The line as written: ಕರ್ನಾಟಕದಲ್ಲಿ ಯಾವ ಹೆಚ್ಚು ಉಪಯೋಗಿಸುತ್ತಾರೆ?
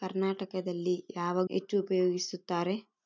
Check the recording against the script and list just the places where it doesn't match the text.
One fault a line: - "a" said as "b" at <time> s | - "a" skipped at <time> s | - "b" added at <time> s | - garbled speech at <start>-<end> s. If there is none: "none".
none